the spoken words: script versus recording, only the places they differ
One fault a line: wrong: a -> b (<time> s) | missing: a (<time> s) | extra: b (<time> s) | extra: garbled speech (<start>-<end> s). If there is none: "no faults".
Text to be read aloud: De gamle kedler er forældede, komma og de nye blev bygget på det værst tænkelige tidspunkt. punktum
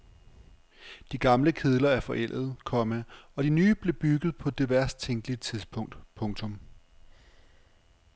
no faults